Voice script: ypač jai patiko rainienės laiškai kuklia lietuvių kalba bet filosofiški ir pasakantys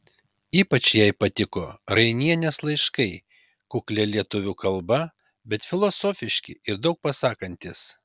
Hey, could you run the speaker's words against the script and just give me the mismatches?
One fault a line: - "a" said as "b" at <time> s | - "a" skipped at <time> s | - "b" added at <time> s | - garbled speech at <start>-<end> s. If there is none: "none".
- "daug" added at 6.9 s